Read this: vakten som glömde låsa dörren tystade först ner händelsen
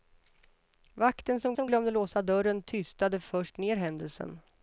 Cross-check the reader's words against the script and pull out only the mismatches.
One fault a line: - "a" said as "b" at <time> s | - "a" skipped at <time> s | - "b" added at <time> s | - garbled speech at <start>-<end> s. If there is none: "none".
- "som" added at 1.5 s